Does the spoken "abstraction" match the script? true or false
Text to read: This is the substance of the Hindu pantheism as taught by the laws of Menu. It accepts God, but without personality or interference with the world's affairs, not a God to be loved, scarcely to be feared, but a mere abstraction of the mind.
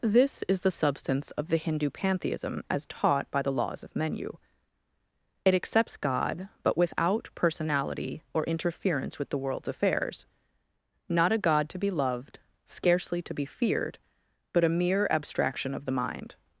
true